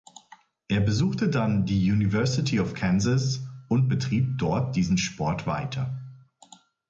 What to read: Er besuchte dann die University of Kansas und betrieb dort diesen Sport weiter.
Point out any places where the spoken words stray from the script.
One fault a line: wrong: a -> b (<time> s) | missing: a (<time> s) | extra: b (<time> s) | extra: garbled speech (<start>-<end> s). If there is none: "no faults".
no faults